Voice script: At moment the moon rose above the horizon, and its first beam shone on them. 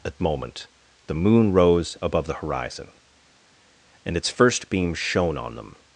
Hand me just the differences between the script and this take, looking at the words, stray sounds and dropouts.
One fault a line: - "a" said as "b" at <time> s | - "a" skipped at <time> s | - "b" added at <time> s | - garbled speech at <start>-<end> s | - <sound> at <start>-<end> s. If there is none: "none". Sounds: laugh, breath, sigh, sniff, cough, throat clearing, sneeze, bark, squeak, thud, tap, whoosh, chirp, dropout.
none